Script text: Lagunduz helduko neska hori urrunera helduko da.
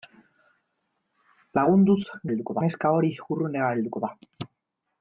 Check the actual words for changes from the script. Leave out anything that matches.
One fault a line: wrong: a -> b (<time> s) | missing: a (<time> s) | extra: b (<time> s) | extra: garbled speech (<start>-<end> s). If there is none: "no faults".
no faults